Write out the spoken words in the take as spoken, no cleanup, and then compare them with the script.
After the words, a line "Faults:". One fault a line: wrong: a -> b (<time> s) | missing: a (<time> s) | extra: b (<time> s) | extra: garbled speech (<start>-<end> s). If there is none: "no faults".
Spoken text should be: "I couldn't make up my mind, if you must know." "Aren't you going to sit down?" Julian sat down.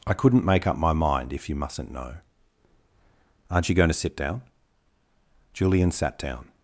"I couldn't make up my mind, if you mustn't know." "Aren't you going to sit down?" Julian sat down.
Faults:
wrong: must -> mustn't (1.6 s)